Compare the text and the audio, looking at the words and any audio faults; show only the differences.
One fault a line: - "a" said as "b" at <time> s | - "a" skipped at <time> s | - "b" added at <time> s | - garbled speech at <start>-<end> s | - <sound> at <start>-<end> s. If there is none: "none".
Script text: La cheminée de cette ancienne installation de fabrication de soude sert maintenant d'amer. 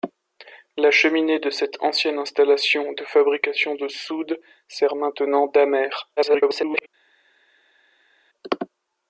- garbled speech at 6.2-6.9 s